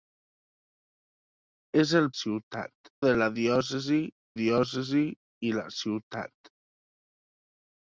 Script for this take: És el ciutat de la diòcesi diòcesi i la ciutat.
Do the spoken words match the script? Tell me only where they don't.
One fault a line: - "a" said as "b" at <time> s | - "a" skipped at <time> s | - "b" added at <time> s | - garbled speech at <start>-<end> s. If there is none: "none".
none